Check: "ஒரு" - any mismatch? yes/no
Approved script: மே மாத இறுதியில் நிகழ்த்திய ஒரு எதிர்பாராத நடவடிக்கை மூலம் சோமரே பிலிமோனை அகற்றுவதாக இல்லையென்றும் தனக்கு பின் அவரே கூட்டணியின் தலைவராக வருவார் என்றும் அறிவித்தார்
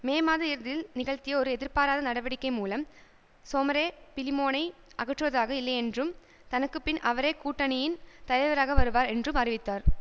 no